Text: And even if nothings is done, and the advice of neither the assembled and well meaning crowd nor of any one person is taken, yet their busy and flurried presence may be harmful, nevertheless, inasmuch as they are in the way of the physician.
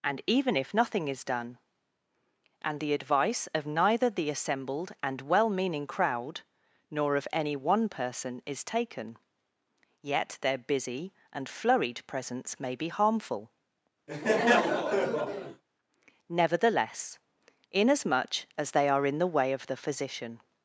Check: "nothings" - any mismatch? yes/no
yes